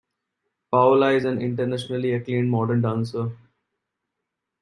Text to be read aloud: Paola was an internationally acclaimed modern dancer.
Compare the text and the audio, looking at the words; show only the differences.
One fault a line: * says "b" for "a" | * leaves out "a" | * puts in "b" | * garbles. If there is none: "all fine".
* says "is" for "was"